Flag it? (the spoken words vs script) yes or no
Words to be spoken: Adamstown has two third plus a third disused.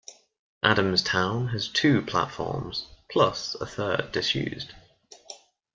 yes